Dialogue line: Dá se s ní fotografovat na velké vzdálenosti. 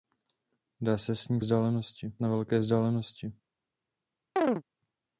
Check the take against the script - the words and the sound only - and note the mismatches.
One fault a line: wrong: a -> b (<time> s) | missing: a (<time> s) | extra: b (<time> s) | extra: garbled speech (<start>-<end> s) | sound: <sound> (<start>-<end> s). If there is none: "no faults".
wrong: fotografovat -> vzdálenosti (1.4 s)
sound: chirp (4.4-4.6 s)